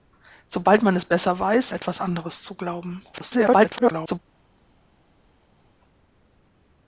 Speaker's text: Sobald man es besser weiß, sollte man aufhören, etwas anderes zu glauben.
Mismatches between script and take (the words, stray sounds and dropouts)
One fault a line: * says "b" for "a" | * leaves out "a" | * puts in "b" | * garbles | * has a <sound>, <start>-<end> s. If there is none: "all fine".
* leaves out "sollte man aufhören"
* garbles